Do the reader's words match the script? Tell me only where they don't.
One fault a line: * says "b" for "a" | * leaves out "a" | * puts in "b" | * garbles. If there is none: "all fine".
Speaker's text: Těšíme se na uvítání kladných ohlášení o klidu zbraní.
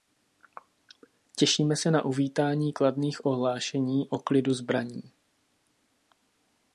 all fine